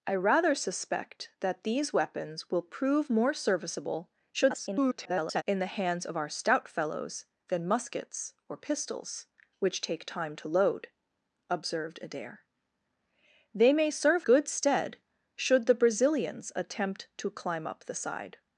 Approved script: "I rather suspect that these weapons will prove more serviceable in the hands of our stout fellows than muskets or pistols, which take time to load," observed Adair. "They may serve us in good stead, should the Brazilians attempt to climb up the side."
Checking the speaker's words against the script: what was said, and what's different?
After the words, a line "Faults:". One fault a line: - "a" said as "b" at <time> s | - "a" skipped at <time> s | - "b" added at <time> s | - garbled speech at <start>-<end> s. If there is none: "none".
"I rather suspect that these weapons will prove more serviceable [garbled] in the hands of our stout fellows than muskets or pistols, which take time to load," observed Adair. "They may serve good stead, should the Brazilians attempt to climb up the side."
Faults:
- garbled speech at 4.3-5.4 s
- "us in" skipped at 14.3 s